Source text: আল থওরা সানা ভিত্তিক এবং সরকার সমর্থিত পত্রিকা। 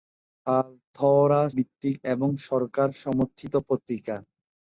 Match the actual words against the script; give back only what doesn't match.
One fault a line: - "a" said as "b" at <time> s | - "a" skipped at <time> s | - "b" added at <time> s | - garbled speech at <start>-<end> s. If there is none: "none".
- "সানা" skipped at 1.4 s